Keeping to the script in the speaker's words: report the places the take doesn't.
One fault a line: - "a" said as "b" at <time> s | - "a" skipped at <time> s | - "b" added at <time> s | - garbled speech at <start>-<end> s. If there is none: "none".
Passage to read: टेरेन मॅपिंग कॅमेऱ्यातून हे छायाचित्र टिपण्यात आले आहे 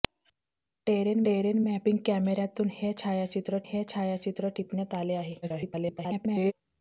- "टेरेन" added at 1.3 s
- "हे छायाचित्र" added at 3.6 s
- garbled speech at 5.4-6.5 s